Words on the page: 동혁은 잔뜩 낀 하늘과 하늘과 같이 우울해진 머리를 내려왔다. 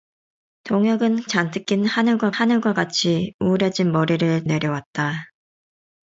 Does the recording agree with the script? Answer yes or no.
yes